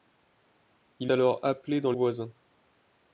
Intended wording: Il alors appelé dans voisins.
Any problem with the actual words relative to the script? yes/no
no